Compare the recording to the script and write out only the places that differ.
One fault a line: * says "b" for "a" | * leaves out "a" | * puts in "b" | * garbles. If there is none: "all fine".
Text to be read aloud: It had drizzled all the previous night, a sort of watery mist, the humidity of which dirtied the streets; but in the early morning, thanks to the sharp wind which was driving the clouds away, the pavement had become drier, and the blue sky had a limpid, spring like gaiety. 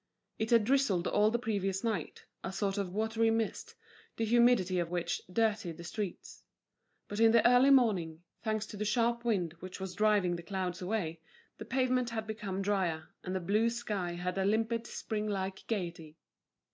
all fine